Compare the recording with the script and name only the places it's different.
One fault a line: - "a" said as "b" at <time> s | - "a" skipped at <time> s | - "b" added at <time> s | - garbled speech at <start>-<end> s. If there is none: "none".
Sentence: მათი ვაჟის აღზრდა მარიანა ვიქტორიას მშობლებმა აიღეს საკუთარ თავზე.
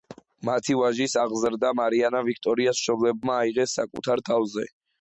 none